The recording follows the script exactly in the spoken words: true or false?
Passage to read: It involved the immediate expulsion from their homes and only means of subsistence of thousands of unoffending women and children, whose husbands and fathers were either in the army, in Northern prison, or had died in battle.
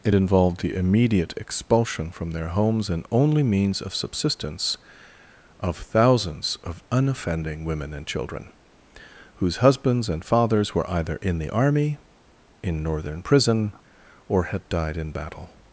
true